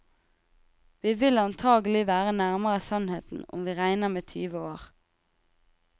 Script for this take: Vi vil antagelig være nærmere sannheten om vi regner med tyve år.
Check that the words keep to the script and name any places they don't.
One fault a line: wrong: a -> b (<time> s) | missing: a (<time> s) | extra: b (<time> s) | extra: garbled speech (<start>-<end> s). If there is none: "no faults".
no faults